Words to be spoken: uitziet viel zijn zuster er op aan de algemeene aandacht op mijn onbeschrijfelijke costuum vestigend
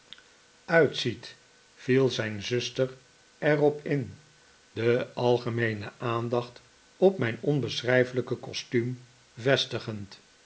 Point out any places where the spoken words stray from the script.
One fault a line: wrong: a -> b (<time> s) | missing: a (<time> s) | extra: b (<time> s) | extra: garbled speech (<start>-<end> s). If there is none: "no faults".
wrong: aan -> in (3.9 s)